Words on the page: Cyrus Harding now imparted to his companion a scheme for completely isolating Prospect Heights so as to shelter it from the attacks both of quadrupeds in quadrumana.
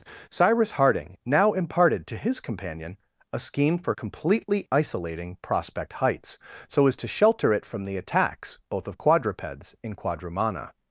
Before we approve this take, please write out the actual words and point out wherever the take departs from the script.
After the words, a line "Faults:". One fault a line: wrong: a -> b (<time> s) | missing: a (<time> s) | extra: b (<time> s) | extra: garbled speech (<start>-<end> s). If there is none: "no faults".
Cyrus Harding now imparted to his companion a scheme for completely isolating Prospect Heights so as to shelter it from the attacks both of quadrupeds in quadrumana.
Faults:
no faults